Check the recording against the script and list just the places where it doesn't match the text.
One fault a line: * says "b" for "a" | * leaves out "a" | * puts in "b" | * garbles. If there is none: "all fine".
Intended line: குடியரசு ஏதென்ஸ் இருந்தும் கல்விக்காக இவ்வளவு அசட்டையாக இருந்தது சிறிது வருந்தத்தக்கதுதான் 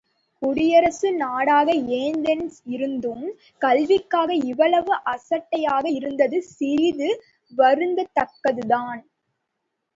* puts in "நாடாக"